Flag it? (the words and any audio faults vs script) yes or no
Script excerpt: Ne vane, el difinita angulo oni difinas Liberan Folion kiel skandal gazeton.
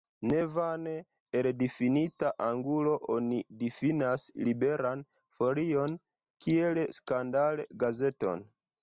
no